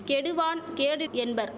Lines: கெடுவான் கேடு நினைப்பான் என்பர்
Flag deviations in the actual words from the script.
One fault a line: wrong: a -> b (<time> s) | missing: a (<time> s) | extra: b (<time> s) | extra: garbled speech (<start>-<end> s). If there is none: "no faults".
missing: நினைப்பான் (1.1 s)